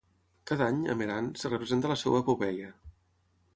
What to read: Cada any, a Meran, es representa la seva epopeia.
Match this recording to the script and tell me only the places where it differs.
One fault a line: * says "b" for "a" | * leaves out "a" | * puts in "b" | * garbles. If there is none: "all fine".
all fine